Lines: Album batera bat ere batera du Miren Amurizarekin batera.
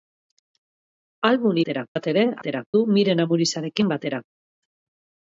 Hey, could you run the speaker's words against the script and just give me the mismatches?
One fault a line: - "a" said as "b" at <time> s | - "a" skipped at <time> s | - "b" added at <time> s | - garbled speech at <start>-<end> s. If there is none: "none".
none